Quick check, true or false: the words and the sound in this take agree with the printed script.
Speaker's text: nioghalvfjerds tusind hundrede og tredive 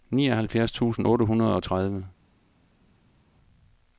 false